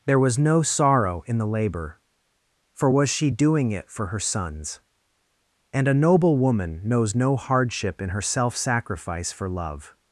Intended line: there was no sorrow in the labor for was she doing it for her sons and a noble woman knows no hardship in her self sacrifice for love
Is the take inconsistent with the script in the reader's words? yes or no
no